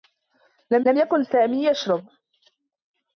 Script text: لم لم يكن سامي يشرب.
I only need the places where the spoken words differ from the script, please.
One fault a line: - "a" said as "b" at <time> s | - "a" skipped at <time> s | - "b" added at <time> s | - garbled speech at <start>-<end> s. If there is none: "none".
none